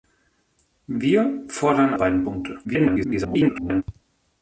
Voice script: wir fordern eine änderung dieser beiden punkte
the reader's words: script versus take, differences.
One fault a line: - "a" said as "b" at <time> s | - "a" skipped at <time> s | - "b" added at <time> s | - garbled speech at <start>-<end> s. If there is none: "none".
- "eine änderung dieser" skipped at 1.9 s
- garbled speech at 2.6-3.8 s